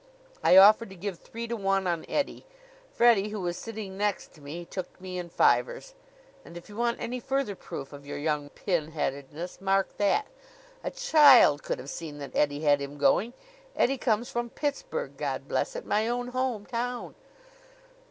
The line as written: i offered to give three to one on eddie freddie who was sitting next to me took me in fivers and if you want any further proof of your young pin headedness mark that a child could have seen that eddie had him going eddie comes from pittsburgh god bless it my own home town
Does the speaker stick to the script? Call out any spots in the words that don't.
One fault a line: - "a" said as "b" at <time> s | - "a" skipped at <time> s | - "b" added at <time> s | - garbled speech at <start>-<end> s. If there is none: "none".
none